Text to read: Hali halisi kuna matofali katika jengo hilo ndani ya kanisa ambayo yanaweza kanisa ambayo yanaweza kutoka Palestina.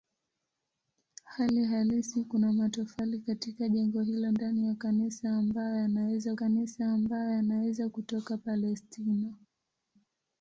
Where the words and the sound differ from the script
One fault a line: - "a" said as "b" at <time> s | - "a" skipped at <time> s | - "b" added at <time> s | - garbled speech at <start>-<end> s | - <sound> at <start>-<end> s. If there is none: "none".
none